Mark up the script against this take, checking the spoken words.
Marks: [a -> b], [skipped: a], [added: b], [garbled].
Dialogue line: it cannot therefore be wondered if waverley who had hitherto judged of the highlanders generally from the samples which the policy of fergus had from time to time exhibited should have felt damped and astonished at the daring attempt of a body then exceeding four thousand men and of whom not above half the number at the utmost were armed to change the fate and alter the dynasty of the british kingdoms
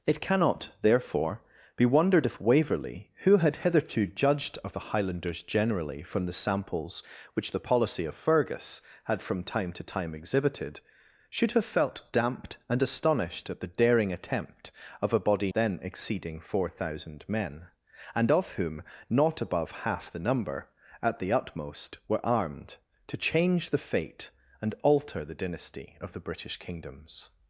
it cannot therefore be wondered if waverley who had hitherto judged of the highlanders generally from the samples which the policy of fergus had from time to time exhibited should have felt damped and astonished at the daring attempt of a body then exceeding four thousand men and of whom not above half the number at the utmost were armed to change the fate and alter the dynasty of the british kingdoms